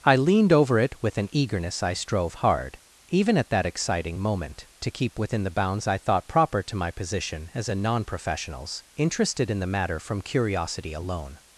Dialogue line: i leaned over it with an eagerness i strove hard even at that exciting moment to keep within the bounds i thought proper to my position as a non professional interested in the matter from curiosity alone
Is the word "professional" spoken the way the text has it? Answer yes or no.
no